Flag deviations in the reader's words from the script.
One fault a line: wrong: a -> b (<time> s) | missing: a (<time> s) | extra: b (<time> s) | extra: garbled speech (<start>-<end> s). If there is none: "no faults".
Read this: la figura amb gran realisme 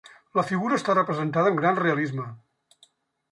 extra: està representada (0.8 s)